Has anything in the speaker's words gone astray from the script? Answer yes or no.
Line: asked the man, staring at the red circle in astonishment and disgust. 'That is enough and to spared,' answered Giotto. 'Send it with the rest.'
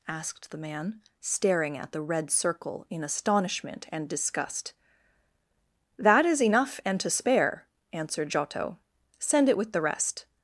yes